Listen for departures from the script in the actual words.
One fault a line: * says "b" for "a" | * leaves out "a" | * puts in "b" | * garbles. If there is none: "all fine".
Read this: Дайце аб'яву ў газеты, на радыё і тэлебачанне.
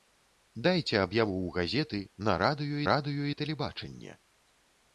* puts in "радыё"